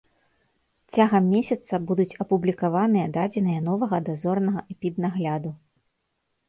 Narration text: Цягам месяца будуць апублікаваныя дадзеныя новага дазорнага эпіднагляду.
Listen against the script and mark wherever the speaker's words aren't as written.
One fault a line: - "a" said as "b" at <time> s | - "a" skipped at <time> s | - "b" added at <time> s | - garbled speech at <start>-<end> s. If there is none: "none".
none